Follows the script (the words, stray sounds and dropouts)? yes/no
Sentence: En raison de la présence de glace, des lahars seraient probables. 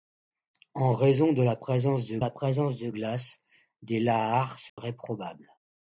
no